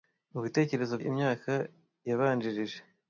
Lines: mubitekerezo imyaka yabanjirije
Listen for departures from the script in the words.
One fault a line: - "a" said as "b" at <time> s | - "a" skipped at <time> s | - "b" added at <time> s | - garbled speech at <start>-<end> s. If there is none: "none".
none